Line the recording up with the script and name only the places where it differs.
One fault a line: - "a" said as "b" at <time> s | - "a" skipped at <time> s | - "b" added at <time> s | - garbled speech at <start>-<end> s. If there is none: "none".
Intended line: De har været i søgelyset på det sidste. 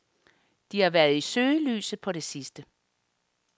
none